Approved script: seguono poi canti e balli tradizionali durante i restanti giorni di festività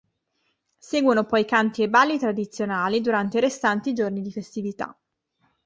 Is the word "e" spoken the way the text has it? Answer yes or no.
yes